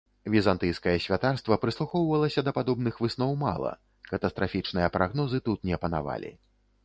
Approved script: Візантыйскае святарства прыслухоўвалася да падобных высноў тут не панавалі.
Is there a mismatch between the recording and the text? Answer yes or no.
yes